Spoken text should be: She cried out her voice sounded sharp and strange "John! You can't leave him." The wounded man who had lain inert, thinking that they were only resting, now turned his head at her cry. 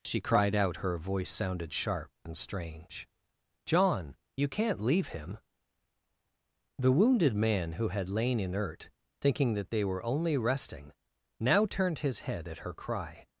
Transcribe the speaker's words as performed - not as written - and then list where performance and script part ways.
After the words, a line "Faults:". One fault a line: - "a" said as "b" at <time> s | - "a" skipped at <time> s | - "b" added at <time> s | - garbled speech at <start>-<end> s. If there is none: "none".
She cried out her voice sounded sharp and strange "John! You can't leave him." The wounded man who had lain inert, thinking that they were only resting, now turned his head at her cry.
Faults:
none